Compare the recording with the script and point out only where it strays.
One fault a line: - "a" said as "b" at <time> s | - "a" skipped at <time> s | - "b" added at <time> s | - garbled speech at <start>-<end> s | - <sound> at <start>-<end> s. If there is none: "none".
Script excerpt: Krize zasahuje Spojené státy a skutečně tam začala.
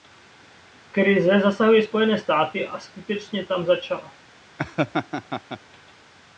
- laugh at 4.6-5.6 s